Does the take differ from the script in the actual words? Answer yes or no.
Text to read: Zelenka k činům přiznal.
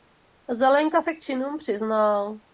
yes